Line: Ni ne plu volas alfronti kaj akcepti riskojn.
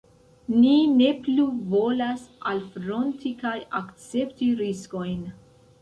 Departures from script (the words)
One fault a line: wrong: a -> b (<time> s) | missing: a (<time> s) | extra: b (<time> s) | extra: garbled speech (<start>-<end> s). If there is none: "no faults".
no faults